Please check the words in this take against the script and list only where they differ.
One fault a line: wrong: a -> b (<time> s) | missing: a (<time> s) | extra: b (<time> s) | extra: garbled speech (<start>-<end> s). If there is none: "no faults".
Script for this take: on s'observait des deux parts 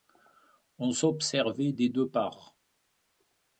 no faults